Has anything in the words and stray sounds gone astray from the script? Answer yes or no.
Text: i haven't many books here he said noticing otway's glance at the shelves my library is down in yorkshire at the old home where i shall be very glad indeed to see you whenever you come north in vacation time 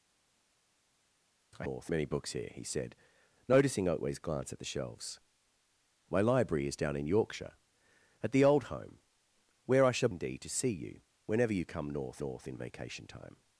yes